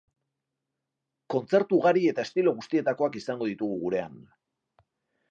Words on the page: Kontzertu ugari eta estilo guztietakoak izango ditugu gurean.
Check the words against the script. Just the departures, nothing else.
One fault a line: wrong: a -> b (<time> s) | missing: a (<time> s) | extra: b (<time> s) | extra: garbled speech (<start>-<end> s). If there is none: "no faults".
no faults